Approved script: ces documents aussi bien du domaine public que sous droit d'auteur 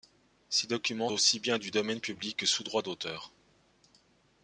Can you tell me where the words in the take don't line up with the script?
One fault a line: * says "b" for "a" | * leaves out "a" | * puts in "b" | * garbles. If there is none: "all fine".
all fine